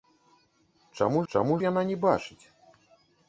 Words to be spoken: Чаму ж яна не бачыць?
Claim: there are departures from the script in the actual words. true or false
true